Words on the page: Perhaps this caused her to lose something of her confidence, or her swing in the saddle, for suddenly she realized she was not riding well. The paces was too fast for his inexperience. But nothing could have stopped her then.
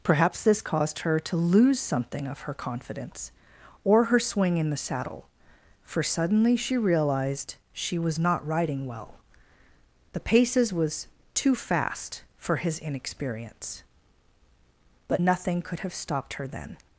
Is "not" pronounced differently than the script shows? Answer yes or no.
no